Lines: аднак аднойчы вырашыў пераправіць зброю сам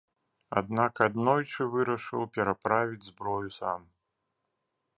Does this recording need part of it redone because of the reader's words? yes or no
no